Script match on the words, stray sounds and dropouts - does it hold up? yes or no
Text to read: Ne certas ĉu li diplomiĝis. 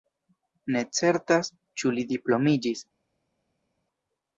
yes